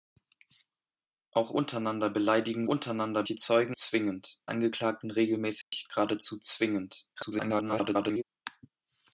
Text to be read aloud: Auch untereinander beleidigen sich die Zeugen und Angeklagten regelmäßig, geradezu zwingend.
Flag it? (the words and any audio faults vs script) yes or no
yes